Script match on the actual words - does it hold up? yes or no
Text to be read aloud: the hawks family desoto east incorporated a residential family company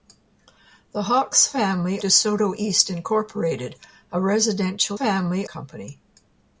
yes